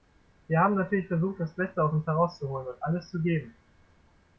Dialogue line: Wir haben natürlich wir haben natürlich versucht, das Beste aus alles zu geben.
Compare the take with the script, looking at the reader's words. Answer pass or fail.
fail